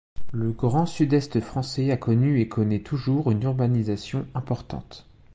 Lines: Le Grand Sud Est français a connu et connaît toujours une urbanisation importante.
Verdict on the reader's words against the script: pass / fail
pass